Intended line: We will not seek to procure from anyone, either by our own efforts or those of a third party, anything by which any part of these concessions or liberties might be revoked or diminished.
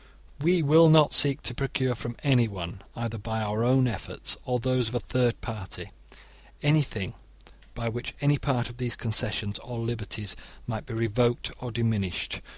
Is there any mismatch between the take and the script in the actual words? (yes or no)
no